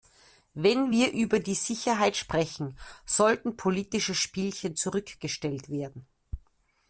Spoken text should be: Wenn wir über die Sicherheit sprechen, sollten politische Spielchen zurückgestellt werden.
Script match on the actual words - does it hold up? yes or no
yes